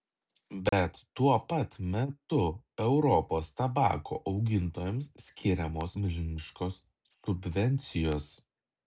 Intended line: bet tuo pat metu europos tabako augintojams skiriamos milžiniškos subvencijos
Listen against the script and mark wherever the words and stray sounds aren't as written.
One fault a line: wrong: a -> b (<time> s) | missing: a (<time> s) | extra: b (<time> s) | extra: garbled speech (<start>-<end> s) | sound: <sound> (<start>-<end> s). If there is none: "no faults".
sound: dropout (0.7-0.7 s)